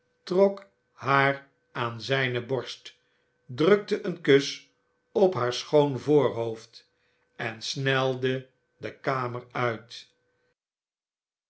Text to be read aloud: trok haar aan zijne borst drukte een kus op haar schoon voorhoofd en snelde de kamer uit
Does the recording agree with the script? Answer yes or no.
yes